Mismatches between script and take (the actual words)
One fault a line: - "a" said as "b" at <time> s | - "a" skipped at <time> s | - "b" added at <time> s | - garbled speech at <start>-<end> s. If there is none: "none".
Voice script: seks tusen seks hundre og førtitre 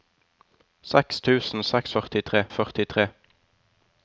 - "hundre" said as "førtitre" at 1.9 s